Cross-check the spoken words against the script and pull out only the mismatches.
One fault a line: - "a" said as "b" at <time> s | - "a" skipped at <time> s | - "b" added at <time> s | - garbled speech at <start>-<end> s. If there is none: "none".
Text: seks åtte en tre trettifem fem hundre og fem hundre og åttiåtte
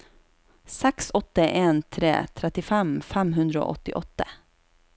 - "fem hundre og" skipped at 3.8 s